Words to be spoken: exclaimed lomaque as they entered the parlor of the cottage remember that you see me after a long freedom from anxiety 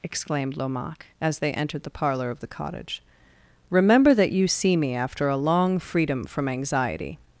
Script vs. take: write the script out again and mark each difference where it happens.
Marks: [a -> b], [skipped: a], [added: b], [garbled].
exclaimed lomaque as they entered the parlor of the cottage remember that you see me after a long freedom from anxiety